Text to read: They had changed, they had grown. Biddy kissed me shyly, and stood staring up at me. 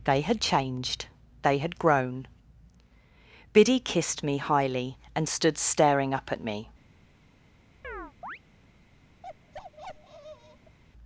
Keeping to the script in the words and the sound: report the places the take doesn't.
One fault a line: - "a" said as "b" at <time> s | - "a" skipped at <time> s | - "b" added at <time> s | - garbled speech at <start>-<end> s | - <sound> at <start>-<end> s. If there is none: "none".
- "shyly" said as "highly" at 4.4 s
- chirp at 7.8-8.4 s
- bark at 9.2-10.8 s